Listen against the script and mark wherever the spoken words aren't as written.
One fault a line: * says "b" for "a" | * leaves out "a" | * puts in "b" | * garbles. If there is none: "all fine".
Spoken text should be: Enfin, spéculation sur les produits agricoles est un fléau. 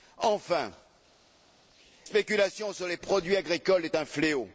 all fine